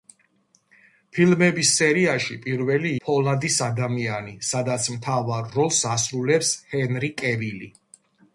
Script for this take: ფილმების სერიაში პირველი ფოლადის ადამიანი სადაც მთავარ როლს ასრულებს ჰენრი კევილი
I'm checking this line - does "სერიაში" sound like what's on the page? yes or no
yes